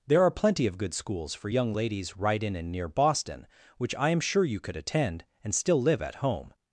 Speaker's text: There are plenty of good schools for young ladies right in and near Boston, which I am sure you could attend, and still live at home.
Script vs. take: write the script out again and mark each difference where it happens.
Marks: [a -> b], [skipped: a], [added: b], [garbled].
There are plenty of good schools for young ladies right in and near Boston, which I am sure you could attend, and still live at home.